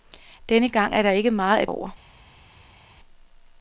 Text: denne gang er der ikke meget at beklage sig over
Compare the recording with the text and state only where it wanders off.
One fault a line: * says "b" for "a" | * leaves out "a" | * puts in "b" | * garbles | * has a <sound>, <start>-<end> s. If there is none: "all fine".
* leaves out "beklage sig"